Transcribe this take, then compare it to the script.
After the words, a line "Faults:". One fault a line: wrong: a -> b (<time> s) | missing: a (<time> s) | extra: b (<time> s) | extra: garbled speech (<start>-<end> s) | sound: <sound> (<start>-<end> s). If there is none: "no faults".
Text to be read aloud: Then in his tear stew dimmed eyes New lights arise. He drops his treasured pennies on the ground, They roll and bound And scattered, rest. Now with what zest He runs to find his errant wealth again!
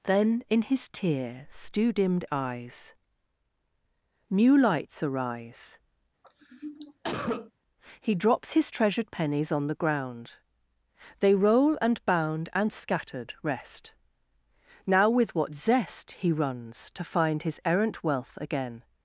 Then in his tear stew dimmed eyes New lights arise. He drops his treasured pennies on the ground, They roll and bound And scattered, rest. Now with what zest He runs to find his errant wealth again!
Faults:
sound: cough (6.2-7.5 s)